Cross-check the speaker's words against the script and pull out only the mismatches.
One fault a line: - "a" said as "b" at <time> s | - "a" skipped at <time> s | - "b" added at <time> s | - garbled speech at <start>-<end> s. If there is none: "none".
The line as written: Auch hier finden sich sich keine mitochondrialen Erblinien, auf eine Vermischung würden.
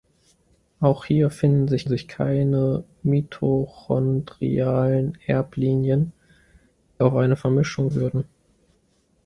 none